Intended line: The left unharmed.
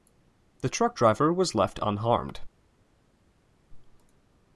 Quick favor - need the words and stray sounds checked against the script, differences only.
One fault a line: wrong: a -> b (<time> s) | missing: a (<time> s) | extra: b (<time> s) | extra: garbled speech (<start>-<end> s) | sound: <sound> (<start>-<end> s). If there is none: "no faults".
extra: truck driver was (0.7 s)